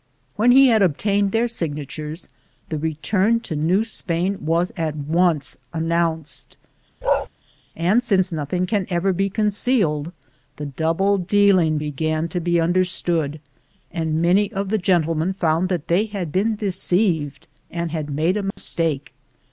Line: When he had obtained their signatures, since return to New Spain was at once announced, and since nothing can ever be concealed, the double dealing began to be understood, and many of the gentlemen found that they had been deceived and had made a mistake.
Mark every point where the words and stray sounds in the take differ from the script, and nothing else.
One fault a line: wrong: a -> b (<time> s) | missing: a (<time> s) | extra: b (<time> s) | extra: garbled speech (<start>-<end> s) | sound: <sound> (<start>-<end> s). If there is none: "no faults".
wrong: since -> the (2.7 s)
sound: bark (7.0-7.3 s)
sound: dropout (18.5-18.6 s)